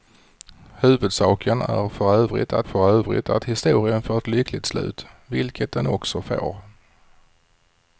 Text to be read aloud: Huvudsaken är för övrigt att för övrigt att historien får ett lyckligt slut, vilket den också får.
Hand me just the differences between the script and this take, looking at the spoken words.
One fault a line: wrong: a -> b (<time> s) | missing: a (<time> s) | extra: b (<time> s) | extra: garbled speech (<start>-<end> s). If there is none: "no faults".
no faults